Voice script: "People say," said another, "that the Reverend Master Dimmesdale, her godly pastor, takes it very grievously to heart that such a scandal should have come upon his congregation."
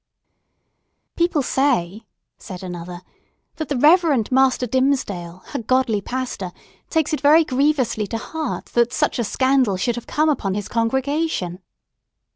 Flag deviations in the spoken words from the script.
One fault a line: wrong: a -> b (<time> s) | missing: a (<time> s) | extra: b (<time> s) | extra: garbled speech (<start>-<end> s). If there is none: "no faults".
no faults